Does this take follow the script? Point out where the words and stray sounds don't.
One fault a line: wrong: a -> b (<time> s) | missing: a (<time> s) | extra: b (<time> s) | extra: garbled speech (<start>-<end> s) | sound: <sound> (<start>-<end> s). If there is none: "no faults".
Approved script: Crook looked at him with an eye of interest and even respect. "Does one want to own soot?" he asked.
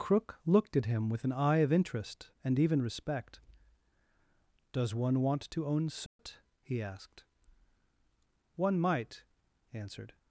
sound: dropout (6.1-6.2 s)
extra: One might answered (8.6 s)